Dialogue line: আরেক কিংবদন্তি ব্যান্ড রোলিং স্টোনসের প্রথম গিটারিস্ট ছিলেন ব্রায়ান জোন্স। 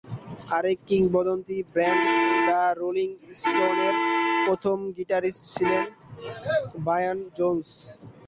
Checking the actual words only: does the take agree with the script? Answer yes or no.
no